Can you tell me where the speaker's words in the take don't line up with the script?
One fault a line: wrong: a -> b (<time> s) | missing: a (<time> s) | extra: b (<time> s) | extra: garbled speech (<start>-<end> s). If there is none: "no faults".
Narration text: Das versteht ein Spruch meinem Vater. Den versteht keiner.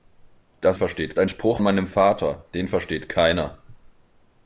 no faults